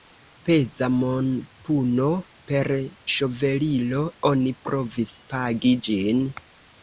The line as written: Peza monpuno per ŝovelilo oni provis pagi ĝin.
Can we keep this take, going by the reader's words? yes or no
yes